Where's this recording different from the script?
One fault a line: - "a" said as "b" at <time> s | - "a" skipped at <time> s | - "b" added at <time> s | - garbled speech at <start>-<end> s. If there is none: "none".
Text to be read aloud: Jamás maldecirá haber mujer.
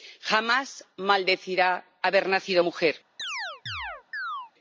- "nacido" added at 2.3 s